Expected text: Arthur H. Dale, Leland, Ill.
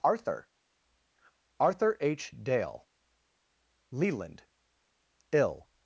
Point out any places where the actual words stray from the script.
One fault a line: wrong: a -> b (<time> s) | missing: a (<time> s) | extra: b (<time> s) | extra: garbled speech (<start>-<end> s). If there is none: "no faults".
extra: arthur (1.6 s)